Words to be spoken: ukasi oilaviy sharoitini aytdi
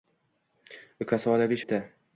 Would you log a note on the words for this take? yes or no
yes